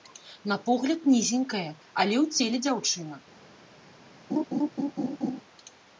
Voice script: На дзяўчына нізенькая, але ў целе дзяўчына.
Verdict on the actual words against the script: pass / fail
fail